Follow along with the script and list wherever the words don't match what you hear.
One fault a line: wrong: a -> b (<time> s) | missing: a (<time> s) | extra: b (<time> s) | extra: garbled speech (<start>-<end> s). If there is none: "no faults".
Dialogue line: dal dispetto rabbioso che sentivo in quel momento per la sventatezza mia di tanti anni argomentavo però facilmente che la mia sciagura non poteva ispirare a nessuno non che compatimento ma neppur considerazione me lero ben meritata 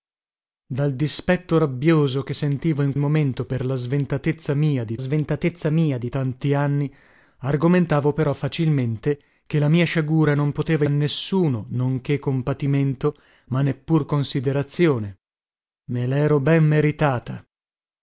missing: quel (3.0 s)
extra: sventatezza mia di (4.9 s)
missing: ispirare (10.9 s)